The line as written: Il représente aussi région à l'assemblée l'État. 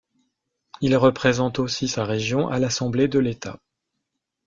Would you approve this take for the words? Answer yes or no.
no